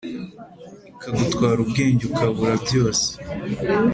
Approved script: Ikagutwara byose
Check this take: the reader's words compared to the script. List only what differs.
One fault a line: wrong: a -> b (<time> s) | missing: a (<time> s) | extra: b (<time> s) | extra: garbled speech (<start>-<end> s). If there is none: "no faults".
extra: ubwenge ukabura (1.6 s)